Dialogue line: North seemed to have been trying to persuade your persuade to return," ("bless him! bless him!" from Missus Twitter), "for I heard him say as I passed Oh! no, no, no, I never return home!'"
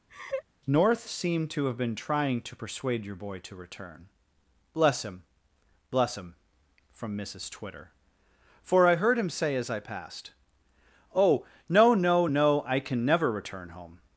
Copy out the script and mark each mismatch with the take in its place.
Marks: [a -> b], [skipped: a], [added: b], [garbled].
North seemed to have been trying to persuade your [persuade -> boy] to return," ("bless him! bless him!" from Missus Twitter), "for I heard him say as I passed Oh! no, no, no, I [added: can] never return home!'"